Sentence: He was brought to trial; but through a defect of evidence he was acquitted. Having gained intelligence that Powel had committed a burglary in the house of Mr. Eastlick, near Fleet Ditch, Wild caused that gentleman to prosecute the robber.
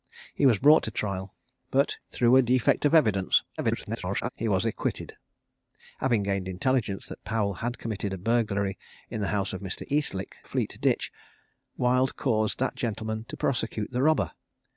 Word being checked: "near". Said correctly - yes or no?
no